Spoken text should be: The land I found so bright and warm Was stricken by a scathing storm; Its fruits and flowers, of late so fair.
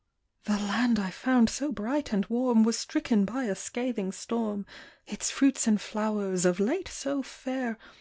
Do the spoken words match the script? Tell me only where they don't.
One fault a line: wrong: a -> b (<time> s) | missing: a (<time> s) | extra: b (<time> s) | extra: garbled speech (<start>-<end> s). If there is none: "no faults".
no faults